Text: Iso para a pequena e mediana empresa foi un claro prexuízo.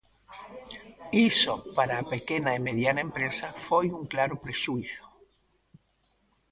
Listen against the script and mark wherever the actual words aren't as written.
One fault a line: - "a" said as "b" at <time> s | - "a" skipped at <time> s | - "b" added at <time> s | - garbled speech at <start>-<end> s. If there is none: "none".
none